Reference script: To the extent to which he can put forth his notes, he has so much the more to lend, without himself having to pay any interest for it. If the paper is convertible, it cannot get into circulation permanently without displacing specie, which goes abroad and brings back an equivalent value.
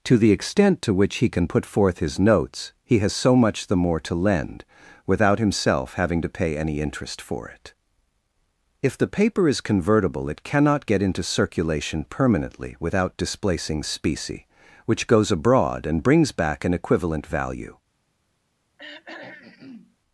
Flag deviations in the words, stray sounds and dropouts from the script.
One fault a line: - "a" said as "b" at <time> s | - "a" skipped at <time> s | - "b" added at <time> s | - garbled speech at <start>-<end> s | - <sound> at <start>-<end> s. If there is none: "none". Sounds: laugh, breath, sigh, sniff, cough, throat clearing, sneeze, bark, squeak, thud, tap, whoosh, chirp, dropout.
- throat clearing at 18.8-20.0 s